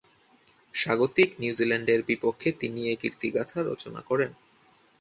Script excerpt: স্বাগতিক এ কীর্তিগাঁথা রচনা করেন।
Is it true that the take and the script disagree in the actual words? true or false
true